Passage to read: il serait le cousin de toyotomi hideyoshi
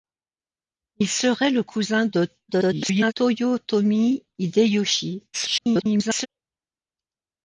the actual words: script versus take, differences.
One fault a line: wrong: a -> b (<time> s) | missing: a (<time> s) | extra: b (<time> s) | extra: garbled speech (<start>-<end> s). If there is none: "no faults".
extra: garbled speech (2.5-3.1 s)
extra: garbled speech (5.3-6.3 s)